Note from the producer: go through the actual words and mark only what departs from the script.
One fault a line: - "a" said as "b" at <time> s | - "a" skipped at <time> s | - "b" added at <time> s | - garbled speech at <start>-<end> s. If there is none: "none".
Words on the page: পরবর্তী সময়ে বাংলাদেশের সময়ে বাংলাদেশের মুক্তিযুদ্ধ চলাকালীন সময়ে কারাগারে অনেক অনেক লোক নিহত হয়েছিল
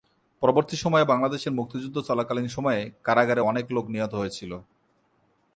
- "সময়ে বাংলাদেশের" skipped at 1.6 s
- "অনেক" skipped at 3.6 s